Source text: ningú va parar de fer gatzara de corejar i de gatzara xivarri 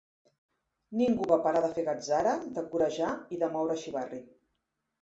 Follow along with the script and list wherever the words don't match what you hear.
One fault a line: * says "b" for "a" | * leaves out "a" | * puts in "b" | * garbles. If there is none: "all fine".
* says "moure" for "gatzara"